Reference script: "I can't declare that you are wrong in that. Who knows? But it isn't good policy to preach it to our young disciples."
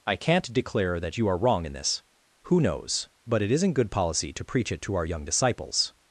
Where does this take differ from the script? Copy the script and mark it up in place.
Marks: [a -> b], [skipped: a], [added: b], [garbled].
"I can't declare that you are wrong in [that. -> this] Who knows? But it isn't good policy to preach it to our young disciples."